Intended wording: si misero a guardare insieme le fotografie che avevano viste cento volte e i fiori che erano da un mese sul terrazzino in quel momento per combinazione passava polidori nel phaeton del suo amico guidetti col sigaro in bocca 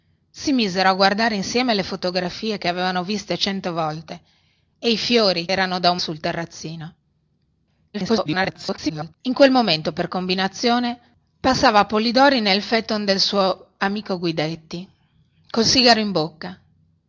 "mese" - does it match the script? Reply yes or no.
no